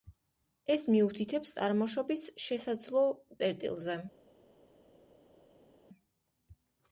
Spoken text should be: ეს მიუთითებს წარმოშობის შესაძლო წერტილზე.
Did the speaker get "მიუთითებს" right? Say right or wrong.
right